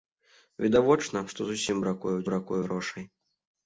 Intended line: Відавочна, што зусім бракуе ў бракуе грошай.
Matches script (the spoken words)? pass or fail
pass